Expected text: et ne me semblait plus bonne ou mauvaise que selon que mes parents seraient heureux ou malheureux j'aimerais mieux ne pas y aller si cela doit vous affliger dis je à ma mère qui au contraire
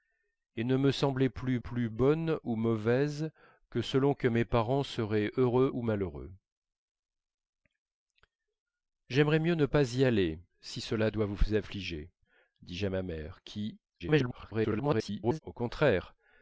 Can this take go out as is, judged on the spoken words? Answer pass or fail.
fail